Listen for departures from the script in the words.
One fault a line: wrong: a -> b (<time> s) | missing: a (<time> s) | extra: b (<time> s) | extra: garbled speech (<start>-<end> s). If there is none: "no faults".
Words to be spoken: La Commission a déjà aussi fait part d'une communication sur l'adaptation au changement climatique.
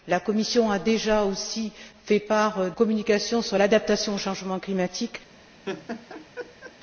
missing: d'une (2.7 s)